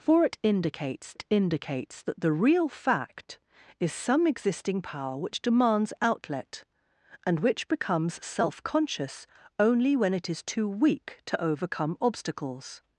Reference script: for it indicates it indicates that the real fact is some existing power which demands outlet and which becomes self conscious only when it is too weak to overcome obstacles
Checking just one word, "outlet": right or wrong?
right